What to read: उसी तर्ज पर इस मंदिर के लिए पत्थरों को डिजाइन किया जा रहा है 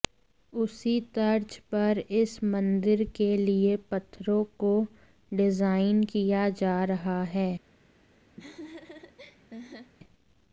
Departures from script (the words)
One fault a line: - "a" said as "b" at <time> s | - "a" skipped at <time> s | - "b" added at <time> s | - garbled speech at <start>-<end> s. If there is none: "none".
none